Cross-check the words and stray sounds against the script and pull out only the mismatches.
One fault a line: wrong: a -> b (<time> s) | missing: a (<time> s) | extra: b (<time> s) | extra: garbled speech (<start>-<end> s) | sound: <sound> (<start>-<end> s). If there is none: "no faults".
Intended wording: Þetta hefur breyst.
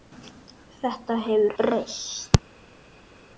no faults